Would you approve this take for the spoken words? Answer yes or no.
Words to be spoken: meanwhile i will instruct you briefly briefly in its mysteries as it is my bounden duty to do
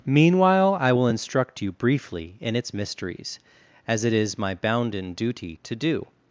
no